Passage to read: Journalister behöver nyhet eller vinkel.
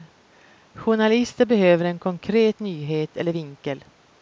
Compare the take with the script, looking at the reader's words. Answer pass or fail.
fail